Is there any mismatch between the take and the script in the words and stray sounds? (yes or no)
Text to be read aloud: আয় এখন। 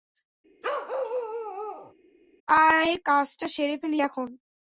yes